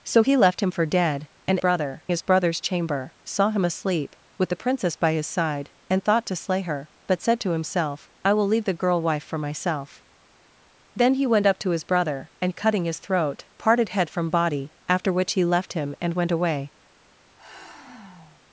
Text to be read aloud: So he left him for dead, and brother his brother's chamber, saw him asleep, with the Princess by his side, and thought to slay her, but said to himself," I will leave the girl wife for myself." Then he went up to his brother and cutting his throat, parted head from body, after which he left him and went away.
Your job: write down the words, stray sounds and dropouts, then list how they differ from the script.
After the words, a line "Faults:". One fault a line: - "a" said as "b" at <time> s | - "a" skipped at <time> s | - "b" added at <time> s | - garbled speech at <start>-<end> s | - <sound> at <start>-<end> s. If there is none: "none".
So he left him for dead, and brother his brother's chamber, saw him asleep, with the Princess by his side, and thought to slay her, but said to himself," I will leave the girl wife for myself." Then he went up to his brother and cutting his throat, parted head from body, after which he left him and went away.
Faults:
- sigh at 17.4-18.4 s